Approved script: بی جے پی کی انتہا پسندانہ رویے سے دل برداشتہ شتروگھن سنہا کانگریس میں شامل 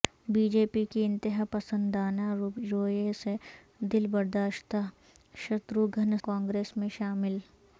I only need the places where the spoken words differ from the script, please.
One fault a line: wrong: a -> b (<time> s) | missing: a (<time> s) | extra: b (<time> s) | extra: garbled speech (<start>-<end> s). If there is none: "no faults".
missing: سنہا (6.2 s)